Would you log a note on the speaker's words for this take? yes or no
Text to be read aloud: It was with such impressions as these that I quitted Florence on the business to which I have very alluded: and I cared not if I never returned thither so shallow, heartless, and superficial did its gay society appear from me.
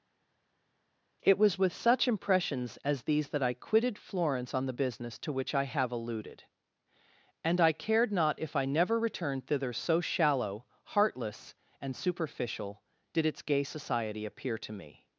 yes